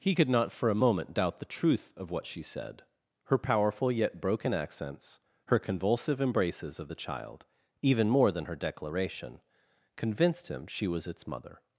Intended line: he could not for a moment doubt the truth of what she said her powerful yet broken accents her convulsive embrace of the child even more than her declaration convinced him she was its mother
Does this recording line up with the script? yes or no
no